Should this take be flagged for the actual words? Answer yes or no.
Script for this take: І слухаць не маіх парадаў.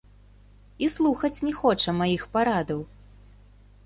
yes